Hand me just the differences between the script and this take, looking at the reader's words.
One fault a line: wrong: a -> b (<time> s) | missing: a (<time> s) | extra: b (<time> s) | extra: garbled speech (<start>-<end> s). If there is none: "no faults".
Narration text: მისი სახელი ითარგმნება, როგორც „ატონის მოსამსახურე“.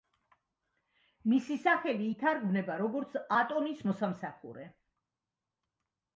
no faults